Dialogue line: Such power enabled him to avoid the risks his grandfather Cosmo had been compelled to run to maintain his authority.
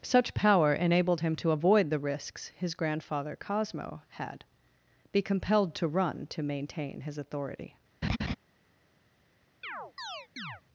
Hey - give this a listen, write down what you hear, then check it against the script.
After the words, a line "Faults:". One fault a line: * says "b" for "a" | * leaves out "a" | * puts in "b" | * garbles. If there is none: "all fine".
Such power enabled him to avoid the risks his grandfather Cosmo had be compelled to run to maintain his authority.
Faults:
* says "be" for "been"